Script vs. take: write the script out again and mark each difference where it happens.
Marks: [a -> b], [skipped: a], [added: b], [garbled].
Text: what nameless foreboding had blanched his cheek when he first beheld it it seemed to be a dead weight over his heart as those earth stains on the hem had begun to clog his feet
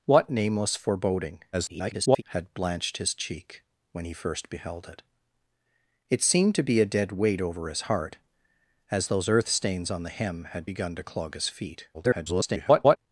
what nameless foreboding [garbled] had blanched his cheek when he first beheld it it seemed to be a dead weight over his heart as those earth stains on the hem had begun to clog his feet [garbled]